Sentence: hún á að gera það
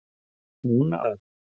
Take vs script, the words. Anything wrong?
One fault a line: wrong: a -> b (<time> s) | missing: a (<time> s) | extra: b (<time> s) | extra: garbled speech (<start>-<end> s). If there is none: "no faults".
missing: að gera (1.1 s)